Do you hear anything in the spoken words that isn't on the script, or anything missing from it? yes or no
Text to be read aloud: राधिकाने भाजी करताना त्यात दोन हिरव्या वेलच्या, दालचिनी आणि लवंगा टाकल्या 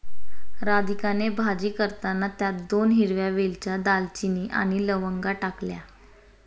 no